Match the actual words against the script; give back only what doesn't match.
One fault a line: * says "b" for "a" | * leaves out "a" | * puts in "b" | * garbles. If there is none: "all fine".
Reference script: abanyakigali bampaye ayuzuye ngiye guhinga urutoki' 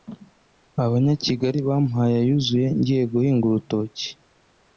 all fine